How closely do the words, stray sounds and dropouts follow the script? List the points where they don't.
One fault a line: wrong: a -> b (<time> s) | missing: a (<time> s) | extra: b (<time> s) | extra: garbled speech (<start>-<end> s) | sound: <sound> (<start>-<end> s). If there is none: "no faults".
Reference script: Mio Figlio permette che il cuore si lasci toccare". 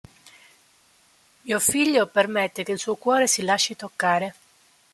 extra: suo (2.8 s)